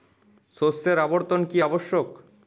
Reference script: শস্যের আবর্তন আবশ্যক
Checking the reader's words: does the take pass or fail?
fail